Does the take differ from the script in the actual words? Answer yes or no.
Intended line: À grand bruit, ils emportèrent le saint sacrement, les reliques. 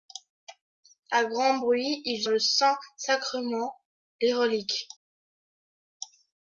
yes